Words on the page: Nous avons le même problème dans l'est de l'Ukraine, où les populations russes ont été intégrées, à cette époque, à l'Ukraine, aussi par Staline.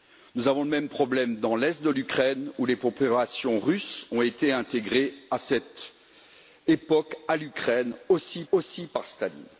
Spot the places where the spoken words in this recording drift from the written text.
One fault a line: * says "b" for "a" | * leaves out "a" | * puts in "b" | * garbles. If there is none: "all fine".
* puts in "aussi"